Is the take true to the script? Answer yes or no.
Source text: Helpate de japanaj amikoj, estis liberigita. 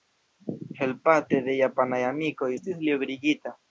yes